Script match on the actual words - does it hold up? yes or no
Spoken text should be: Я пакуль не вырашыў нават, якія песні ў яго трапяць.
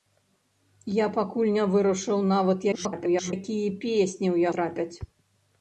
no